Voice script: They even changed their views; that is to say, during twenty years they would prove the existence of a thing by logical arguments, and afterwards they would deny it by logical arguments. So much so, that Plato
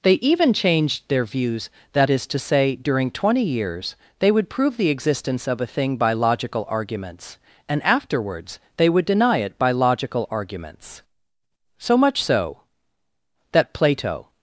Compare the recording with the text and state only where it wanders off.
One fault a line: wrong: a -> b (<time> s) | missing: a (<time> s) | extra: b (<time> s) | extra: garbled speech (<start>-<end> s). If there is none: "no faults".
no faults